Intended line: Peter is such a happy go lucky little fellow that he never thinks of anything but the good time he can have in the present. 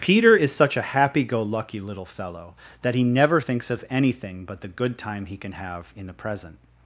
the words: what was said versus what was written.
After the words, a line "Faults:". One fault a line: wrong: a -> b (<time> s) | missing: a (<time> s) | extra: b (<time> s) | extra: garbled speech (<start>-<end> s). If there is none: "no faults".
Peter is such a happy go lucky little fellow that he never thinks of anything but the good time he can have in the present.
Faults:
no faults